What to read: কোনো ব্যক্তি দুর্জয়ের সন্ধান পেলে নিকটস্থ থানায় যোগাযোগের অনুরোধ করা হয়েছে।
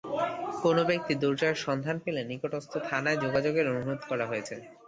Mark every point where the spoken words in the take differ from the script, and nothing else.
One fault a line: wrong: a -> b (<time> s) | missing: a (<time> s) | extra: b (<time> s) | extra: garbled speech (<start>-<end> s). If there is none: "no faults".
no faults